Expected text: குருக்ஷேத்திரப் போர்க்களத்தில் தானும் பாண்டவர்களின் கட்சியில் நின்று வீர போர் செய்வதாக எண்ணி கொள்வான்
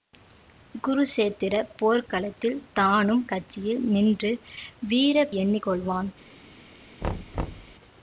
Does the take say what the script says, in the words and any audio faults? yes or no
no